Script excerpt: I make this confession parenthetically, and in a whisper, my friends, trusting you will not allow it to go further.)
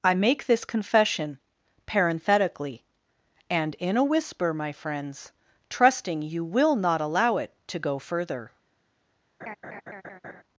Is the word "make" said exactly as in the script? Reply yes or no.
yes